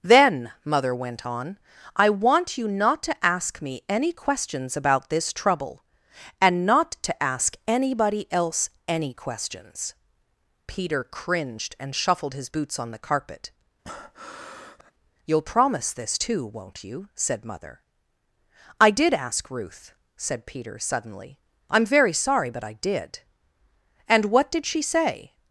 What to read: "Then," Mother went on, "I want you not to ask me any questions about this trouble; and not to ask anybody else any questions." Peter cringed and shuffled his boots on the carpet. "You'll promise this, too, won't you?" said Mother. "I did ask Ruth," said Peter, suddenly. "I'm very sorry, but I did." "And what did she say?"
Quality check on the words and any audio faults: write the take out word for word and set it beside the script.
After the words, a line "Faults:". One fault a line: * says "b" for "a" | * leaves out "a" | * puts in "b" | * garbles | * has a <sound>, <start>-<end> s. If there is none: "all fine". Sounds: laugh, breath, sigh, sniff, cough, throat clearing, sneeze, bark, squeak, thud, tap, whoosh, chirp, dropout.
"Then," Mother went on, "I want you not to ask me any questions about this trouble; and not to ask anybody else any questions." Peter cringed and shuffled his boots on the carpet. "You'll promise this, too, won't you?" said Mother. "I did ask Ruth," said Peter, suddenly. "I'm very sorry, but I did." "And what did she say?"
Faults:
* has a breath, 13.8-14.9 s